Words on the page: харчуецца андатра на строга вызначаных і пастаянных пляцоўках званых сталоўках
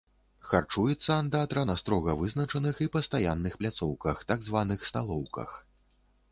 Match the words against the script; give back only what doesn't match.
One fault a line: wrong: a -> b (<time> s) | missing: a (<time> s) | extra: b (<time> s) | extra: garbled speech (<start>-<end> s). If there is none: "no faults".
extra: так (4.3 s)